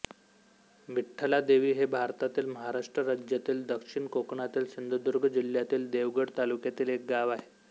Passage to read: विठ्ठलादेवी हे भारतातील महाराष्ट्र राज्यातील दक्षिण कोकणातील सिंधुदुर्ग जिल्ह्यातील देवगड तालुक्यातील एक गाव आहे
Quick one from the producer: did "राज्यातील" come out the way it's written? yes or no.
yes